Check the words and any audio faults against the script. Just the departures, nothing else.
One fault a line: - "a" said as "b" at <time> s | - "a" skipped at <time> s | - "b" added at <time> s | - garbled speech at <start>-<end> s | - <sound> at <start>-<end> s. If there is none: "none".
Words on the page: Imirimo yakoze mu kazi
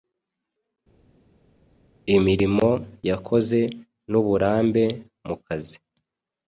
- "n'uburambe" added at 4.1 s